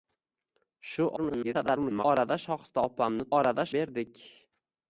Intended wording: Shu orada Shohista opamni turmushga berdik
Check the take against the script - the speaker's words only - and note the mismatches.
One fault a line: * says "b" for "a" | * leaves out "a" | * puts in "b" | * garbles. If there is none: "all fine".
* garbles
* says "orada" for "turmushga"